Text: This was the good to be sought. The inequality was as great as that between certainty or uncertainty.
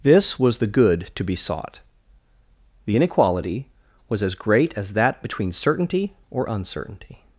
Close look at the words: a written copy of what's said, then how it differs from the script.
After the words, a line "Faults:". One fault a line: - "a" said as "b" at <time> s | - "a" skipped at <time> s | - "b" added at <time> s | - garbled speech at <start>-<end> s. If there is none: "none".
This was the good to be sought. The inequality was as great as that between certainty or uncertainty.
Faults:
none